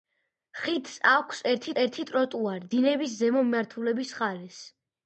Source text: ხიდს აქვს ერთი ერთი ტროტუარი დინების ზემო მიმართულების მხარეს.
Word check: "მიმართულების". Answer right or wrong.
right